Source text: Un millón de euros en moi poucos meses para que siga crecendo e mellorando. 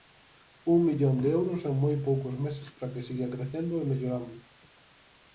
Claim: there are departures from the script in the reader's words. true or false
false